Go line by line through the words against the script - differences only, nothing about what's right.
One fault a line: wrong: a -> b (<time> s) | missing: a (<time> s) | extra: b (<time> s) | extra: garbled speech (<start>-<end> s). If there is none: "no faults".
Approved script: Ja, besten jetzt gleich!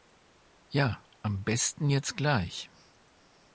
extra: am (1.2 s)